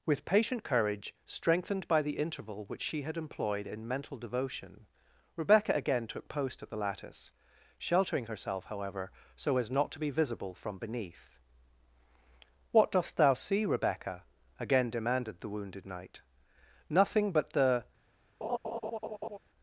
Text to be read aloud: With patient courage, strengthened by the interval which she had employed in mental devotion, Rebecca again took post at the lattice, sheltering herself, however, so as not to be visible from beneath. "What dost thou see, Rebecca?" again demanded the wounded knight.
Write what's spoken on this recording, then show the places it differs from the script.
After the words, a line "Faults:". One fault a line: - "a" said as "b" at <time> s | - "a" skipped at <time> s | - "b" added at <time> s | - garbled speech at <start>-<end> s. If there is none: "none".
With patient courage, strengthened by the interval which she had employed in mental devotion, Rebecca again took post at the lattice, sheltering herself, however, so as not to be visible from beneath. "What dost thou see, Rebecca?" again demanded the wounded knight. "Nothing but the
Faults:
- "Nothing but the" added at 16.9 s